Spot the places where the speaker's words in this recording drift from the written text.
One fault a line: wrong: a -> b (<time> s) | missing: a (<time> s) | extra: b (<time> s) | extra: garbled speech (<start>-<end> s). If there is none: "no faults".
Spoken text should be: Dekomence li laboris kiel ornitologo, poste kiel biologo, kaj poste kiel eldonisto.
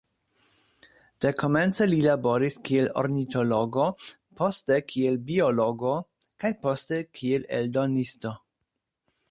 no faults